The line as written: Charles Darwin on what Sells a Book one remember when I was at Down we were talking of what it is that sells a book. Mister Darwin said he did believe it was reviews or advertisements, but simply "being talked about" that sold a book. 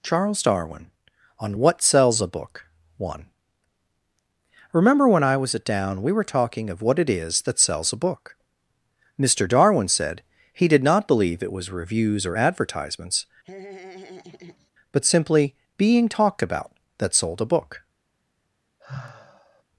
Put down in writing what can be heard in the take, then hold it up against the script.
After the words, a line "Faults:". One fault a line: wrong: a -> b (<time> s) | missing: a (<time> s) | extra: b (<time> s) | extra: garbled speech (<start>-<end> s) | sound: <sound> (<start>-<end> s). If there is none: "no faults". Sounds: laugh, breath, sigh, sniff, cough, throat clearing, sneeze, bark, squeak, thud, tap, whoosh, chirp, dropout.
Charles Darwin on what Sells a Book one remember when I was at Down we were talking of what it is that sells a book. Mister Darwin said he did not believe it was reviews or advertisements, but simply "being talked about" that sold a book.
Faults:
extra: not (10.8 s)
sound: laugh (13.4-14.7 s)
sound: sigh (18.8-19.6 s)